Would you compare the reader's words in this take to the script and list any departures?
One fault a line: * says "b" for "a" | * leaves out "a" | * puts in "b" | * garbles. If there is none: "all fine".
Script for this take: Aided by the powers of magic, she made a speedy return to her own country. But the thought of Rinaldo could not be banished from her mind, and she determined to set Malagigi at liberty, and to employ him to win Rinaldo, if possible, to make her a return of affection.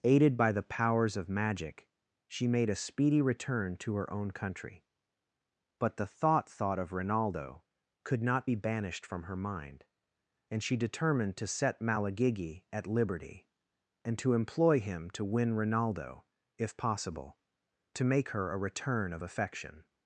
* puts in "thought"